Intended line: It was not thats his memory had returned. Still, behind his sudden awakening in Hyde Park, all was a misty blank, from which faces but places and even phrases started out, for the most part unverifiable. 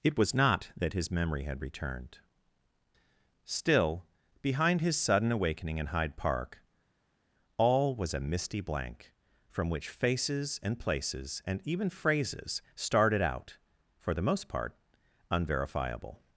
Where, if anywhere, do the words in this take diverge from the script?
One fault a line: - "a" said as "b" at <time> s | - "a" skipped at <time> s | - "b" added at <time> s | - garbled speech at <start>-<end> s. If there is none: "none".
- "thats" said as "that" at 0.8 s
- "but" said as "and" at 10.6 s